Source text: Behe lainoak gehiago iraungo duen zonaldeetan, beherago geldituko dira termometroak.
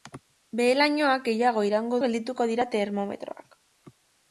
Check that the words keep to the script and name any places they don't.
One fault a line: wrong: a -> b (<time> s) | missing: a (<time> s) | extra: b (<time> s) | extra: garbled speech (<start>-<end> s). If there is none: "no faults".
missing: duen zonaldeetan beherago (2.0 s)